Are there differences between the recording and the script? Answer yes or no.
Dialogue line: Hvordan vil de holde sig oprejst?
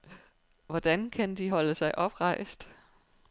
yes